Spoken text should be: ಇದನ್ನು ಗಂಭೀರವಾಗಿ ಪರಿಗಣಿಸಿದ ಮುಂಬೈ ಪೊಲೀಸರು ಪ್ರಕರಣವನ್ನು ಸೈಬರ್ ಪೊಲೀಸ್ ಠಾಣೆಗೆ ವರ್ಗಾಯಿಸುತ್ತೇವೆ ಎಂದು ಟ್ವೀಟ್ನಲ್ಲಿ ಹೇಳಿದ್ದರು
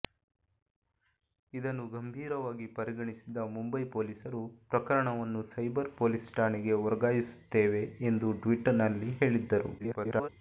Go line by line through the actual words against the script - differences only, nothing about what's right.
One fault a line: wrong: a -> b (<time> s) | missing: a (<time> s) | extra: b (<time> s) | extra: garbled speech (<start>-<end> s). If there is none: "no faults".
extra: garbled speech (9.8-10.3 s)